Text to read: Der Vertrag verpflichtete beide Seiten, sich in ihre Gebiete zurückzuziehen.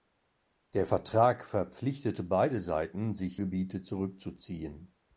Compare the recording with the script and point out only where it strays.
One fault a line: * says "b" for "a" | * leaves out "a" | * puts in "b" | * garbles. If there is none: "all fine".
* leaves out "in ihre"